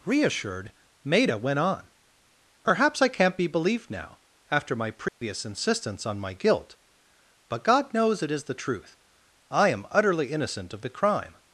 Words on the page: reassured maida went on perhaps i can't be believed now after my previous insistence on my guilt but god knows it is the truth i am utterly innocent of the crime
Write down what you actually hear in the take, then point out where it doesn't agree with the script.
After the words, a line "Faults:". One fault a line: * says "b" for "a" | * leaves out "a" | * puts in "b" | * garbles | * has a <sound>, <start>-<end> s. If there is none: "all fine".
reassured maida went on perhaps i can't be believed now after my previous insistence on my guilt but god knows it is the truth i am utterly innocent of the crime
Faults:
* has a dropout, 5.1-5.2 s